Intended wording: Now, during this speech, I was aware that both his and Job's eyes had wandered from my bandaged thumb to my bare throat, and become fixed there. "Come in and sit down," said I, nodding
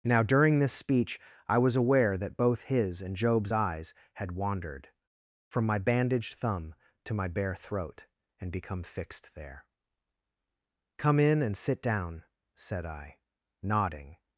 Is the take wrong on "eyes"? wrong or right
right